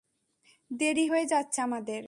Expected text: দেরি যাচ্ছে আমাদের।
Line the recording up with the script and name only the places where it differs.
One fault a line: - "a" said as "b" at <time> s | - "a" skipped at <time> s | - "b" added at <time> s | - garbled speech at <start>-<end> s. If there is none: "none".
- "হয়ে" added at 1.1 s